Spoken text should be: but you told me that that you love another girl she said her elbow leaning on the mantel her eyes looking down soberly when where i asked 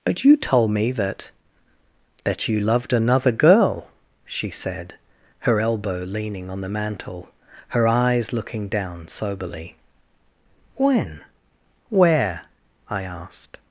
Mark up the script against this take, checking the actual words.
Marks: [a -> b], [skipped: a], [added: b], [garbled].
but you told me that that you [love -> loved] another girl she said her elbow leaning on the mantel her eyes looking down soberly when where i asked